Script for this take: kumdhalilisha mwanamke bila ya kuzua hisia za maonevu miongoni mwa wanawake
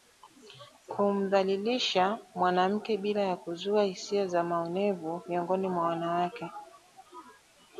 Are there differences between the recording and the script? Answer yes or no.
no